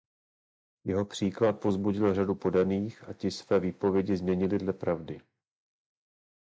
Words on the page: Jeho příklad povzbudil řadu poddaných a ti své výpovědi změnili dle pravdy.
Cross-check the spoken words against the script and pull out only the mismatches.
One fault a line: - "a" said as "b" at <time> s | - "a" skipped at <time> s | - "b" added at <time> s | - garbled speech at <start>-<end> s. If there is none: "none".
none